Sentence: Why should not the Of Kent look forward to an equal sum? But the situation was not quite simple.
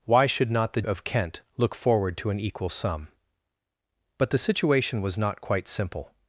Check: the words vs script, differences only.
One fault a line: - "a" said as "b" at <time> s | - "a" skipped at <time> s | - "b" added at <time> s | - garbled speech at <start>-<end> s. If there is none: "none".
none